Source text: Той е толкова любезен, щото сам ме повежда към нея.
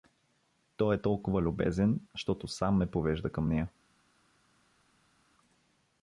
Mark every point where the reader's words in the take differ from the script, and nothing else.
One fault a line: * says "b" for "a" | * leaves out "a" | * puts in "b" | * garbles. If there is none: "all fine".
all fine